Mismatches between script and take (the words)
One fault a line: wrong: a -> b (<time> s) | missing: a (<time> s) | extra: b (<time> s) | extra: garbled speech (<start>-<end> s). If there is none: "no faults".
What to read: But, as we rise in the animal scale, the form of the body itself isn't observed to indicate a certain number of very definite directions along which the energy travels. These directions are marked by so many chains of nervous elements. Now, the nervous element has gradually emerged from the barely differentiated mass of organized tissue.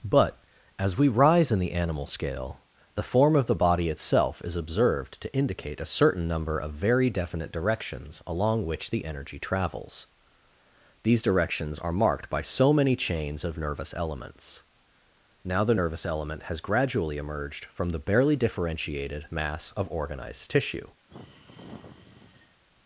wrong: isn't -> is (4.4 s)